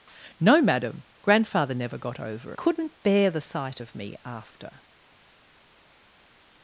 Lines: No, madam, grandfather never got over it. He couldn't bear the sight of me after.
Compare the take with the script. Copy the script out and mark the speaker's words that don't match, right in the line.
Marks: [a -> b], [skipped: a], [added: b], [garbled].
No, madam, grandfather never got over [skipped: it. He] couldn't bear the sight of me after.